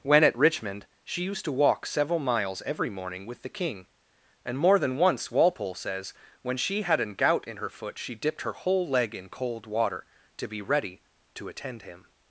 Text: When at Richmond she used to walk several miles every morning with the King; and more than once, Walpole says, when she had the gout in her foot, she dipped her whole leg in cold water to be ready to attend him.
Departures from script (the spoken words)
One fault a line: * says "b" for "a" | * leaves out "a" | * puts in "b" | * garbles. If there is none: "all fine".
* says "an" for "the"